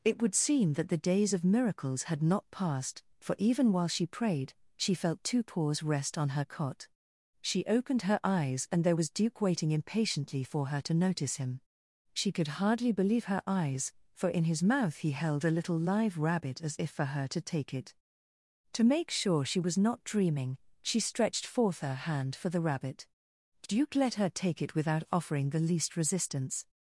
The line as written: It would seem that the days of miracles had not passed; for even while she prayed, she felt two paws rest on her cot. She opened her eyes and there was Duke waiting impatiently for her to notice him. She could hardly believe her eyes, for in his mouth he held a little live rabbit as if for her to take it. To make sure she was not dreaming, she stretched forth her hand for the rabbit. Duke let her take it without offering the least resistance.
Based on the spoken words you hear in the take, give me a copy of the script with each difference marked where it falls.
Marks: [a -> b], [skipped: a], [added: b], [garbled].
It would seem that the days of miracles had not passed; for even while she prayed, she felt two paws rest on her cot. She opened her eyes and there was Duke waiting impatiently for her to notice him. She could hardly believe her eyes, for in his mouth he held a little live rabbit as if for her to take it. To make sure she was not dreaming, she stretched forth her hand for the rabbit. Duke let her take it without offering the least resistance.